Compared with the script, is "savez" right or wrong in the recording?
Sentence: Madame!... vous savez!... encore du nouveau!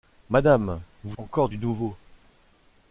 wrong